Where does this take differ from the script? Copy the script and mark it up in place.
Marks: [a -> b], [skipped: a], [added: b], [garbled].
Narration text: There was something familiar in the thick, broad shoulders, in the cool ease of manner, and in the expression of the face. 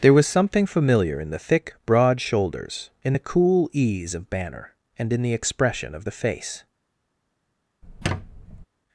There was something familiar in the thick, broad shoulders, in the cool ease of [manner, -> banner] and in the expression of the face.